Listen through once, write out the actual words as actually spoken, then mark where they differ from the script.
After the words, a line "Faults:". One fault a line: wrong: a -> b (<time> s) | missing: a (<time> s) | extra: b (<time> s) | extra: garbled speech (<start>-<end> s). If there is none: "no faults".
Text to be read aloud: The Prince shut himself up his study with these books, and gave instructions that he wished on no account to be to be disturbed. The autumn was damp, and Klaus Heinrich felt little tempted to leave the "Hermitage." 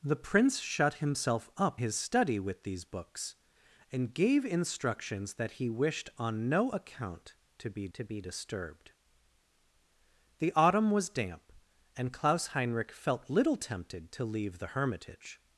The Prince shut himself up his study with these books, and gave instructions that he wished on no account to be to be disturbed. The autumn was damp, and Klaus Heinrich felt little tempted to leave the "Hermitage."
Faults:
no faults